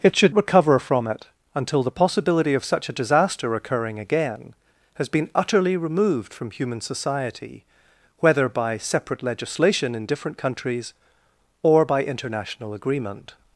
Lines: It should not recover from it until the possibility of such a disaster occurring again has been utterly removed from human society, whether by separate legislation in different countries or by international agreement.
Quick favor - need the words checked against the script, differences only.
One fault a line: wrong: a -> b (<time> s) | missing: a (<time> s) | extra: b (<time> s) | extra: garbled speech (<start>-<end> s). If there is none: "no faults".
missing: not (0.3 s)